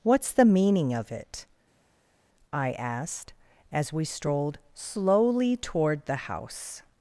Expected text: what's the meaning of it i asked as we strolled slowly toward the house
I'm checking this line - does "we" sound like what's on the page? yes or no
yes